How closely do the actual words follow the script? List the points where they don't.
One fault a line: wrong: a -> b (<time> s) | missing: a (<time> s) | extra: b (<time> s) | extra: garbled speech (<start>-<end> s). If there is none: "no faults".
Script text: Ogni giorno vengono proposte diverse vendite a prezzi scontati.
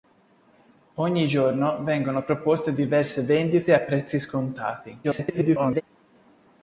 extra: garbled speech (5.0-5.8 s)